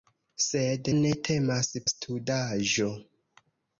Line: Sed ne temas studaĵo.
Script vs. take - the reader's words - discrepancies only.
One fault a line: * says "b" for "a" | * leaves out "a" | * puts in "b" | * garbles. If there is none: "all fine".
all fine